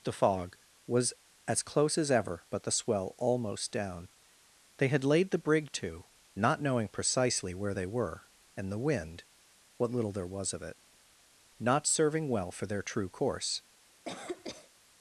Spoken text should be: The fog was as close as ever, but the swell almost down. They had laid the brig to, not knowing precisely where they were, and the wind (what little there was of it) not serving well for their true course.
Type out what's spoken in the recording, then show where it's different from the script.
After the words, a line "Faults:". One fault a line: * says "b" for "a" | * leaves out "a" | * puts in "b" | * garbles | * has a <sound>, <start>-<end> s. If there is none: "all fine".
The fog was as close as ever, but the swell almost down. They had laid the brig to, not knowing precisely where they were, and the wind (what little there was of it) not serving well for their true course.
Faults:
* has a cough, 14.1-14.7 s